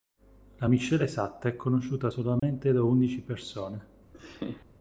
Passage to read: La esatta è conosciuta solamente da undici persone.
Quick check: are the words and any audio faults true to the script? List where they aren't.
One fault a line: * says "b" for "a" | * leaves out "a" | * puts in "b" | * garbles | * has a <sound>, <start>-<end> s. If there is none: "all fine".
* puts in "miscela"
* has a dropout, 2.4-2.4 s
* has a laugh, 4.1-4.7 s